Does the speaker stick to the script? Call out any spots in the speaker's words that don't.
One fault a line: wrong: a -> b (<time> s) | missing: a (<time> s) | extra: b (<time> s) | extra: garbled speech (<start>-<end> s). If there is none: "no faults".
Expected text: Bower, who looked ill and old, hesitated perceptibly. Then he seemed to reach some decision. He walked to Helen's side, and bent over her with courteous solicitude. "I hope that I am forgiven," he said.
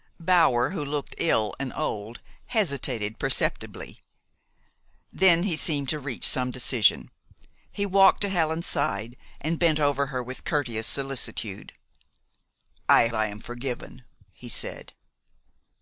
missing: hope that (13.1 s)